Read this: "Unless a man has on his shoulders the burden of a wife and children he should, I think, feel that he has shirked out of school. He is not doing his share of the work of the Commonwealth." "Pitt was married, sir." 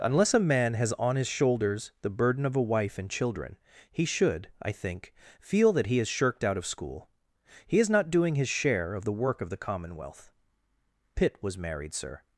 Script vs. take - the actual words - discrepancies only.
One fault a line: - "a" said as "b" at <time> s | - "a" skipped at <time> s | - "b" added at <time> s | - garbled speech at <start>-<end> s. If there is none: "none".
none